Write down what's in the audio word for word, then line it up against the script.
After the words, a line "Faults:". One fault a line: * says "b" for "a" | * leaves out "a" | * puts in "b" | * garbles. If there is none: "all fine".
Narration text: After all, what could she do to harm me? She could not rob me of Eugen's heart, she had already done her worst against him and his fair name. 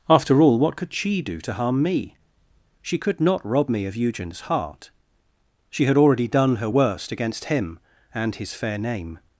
After all, what could she do to harm me? She could not rob me of Eugen's heart, she had already done her worst against him and his fair name.
Faults:
all fine